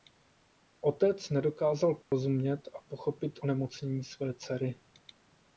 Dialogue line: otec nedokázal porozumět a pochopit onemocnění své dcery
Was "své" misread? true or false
false